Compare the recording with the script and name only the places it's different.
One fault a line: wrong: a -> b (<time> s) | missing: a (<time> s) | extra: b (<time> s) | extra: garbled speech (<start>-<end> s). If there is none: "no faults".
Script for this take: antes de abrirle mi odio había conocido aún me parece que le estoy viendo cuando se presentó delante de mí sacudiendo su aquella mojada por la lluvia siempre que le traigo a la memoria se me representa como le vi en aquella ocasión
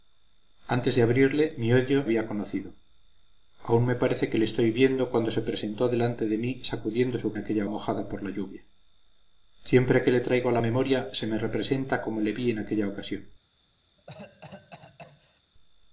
no faults